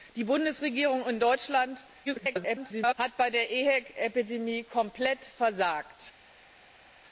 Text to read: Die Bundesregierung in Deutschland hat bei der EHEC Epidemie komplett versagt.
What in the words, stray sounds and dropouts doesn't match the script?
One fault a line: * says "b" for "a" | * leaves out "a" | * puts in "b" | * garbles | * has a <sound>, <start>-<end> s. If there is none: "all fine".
* garbles